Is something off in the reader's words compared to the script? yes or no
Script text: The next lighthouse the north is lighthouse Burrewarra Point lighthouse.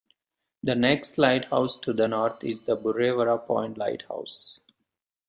yes